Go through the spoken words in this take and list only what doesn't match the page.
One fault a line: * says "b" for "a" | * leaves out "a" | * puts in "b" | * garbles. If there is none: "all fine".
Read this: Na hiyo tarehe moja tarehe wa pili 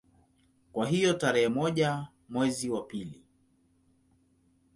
* says "Kwa" for "Na"
* says "mwezi" for "tarehe"